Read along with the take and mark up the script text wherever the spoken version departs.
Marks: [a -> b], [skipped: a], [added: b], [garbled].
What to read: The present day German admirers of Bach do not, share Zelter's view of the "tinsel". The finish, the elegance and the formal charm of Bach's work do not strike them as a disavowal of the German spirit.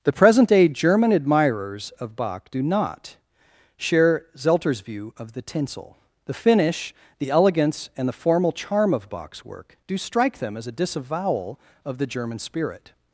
The present day German admirers of Bach do not, share Zelter's view of the "tinsel". The finish, the elegance and the formal charm of Bach's work do [skipped: not] strike them as a disavowal of the German spirit.